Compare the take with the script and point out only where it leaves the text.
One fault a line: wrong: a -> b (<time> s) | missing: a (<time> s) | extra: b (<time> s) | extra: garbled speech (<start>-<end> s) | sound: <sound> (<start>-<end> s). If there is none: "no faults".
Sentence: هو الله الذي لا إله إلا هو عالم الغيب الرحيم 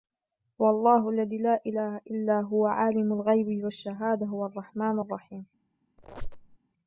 extra: والشهادة هو الرحمن (3.6 s)
sound: squeak (6.0-6.6 s)